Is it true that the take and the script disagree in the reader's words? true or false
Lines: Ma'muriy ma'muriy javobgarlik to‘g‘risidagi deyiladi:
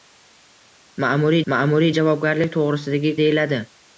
false